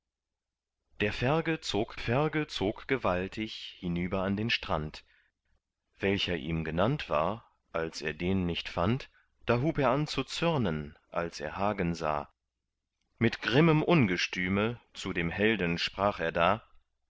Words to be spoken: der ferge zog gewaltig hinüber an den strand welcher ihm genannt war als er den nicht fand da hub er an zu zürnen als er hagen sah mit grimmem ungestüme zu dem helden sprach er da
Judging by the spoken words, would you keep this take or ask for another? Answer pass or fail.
fail